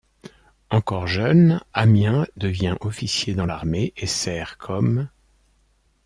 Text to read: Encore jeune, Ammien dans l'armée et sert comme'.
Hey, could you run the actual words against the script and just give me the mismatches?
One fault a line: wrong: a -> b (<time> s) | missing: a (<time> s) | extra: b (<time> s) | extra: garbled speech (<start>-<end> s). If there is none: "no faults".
extra: devient officier (2.4 s)